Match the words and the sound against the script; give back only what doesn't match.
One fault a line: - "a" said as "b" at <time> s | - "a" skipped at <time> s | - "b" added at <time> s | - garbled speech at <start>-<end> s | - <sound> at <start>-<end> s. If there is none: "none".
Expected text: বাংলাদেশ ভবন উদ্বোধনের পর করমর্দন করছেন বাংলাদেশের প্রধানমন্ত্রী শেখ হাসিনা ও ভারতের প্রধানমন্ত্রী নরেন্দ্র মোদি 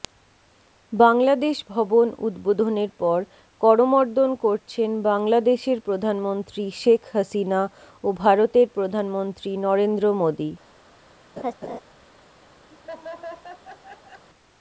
- laugh at 11.4-11.8 s
- laugh at 12.7-14.2 s